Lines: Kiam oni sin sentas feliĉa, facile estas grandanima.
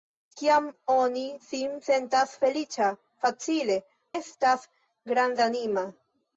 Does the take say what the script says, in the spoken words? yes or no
yes